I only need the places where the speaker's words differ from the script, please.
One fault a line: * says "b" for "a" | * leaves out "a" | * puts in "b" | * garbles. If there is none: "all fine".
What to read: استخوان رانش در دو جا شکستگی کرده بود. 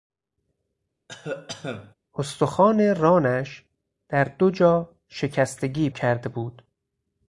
all fine